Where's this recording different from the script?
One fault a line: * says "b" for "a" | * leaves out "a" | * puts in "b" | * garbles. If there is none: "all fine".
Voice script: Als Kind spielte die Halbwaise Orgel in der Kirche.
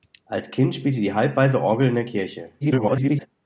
* garbles